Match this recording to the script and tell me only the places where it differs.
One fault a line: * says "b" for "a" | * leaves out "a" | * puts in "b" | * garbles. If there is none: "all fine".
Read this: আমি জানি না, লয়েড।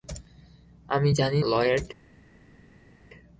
* leaves out "না"